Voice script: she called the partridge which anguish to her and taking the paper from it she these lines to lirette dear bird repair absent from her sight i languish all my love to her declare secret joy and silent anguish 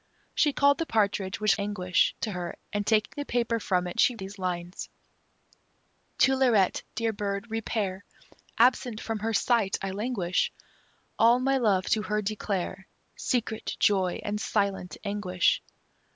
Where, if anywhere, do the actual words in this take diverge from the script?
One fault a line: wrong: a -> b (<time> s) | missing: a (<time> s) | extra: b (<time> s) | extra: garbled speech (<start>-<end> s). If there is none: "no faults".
no faults